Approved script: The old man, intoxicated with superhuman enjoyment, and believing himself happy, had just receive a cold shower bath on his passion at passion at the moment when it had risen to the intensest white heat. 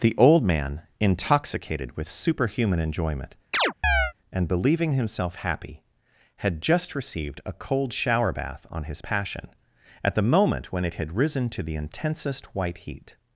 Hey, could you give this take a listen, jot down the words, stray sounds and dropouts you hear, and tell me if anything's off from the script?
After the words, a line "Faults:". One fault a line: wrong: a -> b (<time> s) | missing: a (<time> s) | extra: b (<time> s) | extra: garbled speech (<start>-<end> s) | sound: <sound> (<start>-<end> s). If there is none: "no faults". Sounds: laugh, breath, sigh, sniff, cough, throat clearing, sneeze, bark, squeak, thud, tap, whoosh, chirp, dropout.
The old man, intoxicated with superhuman enjoyment, and believing himself happy, had just received a cold shower bath on his passion at the moment when it had risen to the intensest white heat.
Faults:
sound: chirp (3.5-4.1 s)
wrong: receive -> received (7.0 s)
missing: passion at (10.1 s)